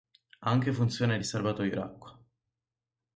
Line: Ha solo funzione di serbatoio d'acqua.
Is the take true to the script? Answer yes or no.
no